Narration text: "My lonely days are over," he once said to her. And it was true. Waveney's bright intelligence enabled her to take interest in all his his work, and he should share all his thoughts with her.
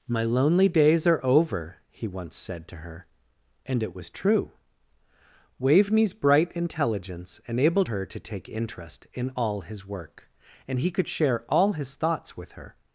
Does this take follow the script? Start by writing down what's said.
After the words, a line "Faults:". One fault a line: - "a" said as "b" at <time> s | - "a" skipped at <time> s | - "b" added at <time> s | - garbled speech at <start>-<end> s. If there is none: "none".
"My lonely days are over," he once said to her. And it was true. Waveney's bright intelligence enabled her to take interest in all his work, and he could share all his thoughts with her.
Faults:
- "his" skipped at 9.9 s
- "should" said as "could" at 10.9 s